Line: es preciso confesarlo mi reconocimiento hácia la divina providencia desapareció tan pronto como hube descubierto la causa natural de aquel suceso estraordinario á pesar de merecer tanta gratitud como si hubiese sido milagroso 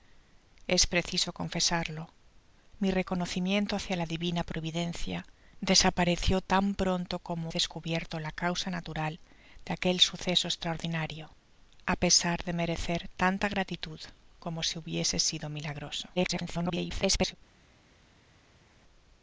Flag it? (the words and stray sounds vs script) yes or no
yes